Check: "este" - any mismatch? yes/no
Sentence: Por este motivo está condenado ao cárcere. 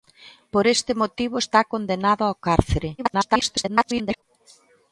no